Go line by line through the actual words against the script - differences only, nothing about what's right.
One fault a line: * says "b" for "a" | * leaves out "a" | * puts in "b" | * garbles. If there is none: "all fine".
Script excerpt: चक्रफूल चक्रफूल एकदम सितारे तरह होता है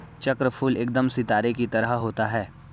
* leaves out "चक्रफूल"
* puts in "की"